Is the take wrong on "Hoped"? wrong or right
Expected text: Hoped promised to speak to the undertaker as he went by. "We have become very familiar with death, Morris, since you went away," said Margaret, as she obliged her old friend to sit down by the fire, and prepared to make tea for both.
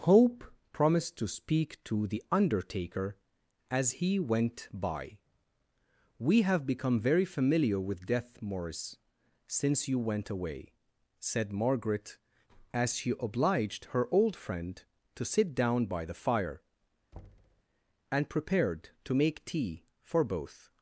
wrong